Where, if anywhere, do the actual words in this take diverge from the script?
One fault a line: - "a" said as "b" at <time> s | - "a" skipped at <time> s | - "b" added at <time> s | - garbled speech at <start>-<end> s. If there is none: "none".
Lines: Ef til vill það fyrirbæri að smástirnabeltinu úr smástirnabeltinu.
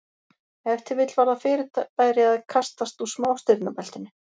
- "var" added at 1.2 s
- "smástirnabeltinu" said as "kastast" at 2.5 s